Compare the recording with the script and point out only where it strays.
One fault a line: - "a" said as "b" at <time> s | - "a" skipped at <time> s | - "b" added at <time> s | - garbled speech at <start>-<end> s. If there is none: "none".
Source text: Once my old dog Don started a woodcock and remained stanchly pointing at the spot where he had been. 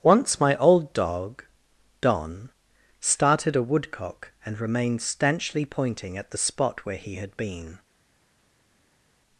none